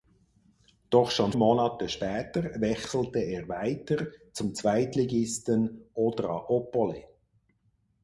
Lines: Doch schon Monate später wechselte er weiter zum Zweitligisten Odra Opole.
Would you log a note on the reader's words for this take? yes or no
no